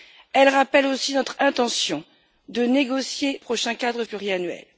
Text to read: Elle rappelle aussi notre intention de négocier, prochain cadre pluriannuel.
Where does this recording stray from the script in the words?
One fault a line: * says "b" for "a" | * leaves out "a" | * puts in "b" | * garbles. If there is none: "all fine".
all fine